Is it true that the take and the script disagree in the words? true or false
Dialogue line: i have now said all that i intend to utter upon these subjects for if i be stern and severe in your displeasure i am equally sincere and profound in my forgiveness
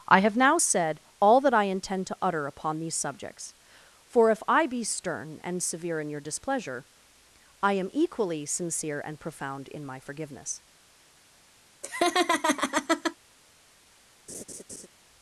false